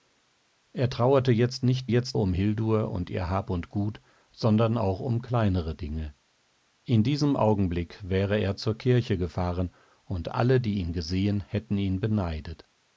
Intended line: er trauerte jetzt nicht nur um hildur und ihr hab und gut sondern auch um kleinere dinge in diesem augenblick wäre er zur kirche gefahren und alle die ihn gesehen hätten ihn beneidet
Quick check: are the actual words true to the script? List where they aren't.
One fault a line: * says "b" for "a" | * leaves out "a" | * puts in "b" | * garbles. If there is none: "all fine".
* says "jetzt" for "nur"